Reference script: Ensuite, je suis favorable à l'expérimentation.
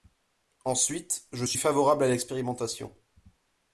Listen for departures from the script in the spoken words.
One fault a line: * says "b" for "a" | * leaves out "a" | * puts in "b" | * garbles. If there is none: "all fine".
all fine